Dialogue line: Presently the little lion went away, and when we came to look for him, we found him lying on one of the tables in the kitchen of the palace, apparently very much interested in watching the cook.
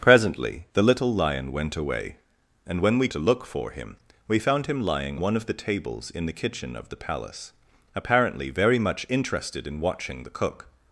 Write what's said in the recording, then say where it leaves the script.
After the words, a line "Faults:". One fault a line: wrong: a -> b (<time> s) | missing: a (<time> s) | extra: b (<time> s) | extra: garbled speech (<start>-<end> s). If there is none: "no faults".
Presently the little lion went away, and when we to look for him, we found him lying one of the tables in the kitchen of the palace, apparently very much interested in watching the cook.
Faults:
missing: came (3.1 s)
missing: on (5.2 s)